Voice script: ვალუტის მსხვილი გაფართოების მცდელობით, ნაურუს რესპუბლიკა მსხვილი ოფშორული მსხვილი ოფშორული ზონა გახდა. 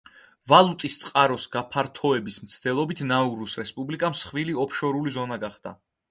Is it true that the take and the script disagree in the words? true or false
true